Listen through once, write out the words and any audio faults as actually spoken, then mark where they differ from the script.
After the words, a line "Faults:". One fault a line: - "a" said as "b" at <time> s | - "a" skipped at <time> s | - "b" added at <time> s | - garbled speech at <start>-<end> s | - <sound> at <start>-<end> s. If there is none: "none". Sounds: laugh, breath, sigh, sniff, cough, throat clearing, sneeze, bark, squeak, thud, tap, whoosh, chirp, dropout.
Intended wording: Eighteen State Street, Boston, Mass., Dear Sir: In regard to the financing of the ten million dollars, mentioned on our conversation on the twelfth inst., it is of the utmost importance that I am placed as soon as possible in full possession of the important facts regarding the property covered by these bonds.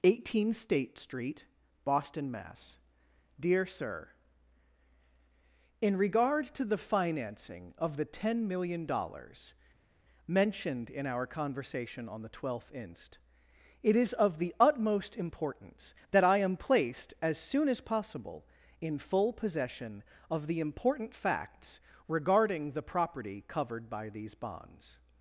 Eighteen State Street, Boston, Mass., Dear Sir: In regard to the financing of the ten million dollars, mentioned in our conversation on the twelfth inst., it is of the utmost importance that I am placed as soon as possible in full possession of the important facts regarding the property covered by these bonds.
Faults:
- "on" said as "in" at 10.9 s